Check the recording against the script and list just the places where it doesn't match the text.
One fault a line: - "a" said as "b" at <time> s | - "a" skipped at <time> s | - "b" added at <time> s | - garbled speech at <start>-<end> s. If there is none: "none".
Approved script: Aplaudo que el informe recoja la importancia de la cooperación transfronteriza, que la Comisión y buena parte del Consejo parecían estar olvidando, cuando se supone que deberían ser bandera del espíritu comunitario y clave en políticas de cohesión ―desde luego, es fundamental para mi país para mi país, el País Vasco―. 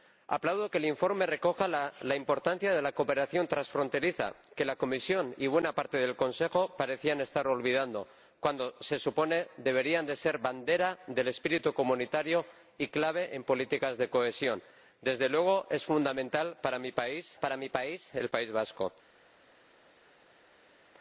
none